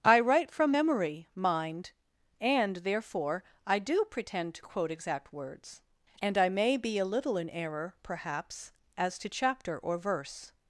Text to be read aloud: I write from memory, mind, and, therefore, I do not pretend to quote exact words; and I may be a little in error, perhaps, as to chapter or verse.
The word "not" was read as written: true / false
false